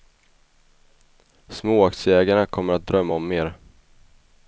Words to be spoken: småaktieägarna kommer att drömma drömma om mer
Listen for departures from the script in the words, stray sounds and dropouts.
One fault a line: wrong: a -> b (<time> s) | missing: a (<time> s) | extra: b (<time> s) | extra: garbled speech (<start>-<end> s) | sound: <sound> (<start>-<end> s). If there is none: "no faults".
missing: drömma (3.1 s)